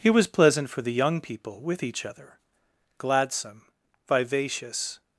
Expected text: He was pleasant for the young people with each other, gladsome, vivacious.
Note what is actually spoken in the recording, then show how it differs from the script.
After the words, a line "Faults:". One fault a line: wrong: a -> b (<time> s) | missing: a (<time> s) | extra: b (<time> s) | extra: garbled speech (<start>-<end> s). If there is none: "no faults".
He was pleasant for the young people with each other, gladsome, vivacious.
Faults:
no faults